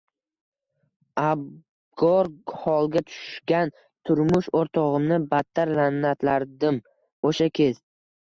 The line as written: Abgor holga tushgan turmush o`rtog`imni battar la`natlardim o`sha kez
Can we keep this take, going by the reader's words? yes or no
yes